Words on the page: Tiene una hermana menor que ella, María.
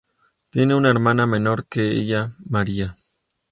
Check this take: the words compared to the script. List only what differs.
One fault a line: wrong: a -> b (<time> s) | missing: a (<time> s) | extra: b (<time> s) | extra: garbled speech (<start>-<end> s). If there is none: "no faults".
no faults